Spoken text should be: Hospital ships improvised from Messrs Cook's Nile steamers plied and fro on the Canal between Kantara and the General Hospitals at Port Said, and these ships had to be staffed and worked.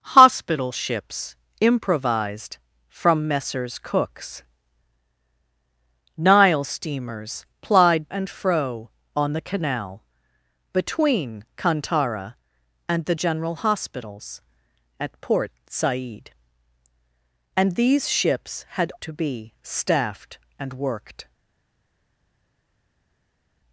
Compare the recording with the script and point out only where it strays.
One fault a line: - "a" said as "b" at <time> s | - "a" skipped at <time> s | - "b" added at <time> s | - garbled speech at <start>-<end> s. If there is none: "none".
none